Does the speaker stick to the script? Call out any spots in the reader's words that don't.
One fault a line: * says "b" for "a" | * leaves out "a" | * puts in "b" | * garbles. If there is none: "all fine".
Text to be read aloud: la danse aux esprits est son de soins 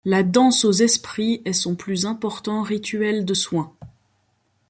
* puts in "plus important rituel"